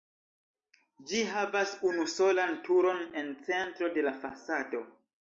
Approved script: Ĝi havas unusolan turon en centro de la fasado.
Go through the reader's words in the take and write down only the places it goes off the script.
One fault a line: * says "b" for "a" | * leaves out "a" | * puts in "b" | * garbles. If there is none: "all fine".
all fine